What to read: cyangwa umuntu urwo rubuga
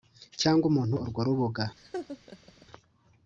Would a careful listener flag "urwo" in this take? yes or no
no